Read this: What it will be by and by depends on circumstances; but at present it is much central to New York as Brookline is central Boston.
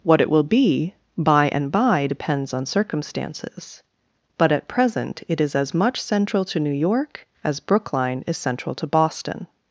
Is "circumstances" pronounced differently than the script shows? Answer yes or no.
no